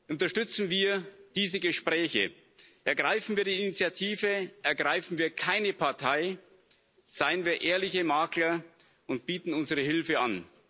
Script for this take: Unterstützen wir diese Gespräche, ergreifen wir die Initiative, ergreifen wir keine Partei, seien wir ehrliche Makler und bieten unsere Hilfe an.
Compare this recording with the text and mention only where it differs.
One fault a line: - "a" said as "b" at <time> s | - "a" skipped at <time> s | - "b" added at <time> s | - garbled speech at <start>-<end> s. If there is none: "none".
none